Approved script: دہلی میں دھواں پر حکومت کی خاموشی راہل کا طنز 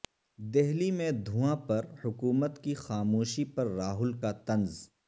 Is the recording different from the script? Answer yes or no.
yes